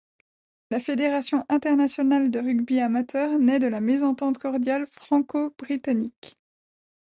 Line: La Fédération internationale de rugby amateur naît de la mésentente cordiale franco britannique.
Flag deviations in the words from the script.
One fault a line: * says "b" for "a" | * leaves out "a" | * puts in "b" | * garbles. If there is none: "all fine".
all fine